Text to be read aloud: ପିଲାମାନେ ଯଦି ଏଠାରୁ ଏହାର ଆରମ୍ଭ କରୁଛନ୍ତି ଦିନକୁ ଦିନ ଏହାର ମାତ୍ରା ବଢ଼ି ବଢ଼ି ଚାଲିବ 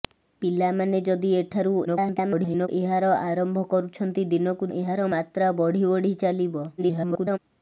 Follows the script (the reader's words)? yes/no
no